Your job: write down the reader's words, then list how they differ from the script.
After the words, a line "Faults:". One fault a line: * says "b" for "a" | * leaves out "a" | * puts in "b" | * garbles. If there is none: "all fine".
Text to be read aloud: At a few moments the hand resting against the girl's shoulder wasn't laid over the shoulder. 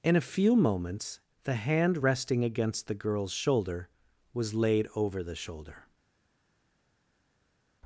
In a few moments the hand resting against the girl's shoulder was laid over the shoulder.
Faults:
* says "In" for "At"
* says "was" for "wasn't"